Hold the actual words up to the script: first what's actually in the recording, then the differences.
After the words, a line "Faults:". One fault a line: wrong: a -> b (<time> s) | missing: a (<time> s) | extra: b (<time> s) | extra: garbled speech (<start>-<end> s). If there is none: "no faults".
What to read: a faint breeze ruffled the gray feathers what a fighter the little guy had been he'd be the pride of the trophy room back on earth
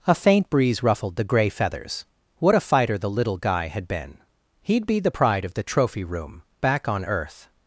a faint breeze ruffled the gray feathers what a fighter the little guy had been he'd be the pride of the trophy room back on earth
Faults:
no faults